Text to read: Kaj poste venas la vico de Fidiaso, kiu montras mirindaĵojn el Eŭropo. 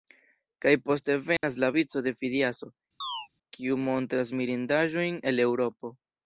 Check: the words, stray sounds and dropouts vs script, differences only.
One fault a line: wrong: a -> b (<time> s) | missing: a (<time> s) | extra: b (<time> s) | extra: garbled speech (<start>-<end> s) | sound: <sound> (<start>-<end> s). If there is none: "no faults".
sound: dropout (1.4-1.4 s)
sound: chirp (3.0-3.3 s)